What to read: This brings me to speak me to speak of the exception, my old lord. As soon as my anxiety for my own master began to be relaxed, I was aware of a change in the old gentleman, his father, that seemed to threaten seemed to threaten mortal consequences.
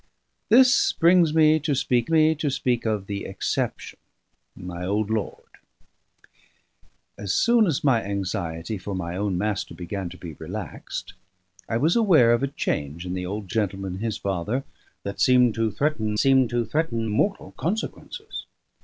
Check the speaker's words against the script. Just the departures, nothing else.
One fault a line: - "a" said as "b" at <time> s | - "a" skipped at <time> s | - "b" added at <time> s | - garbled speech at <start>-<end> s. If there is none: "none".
none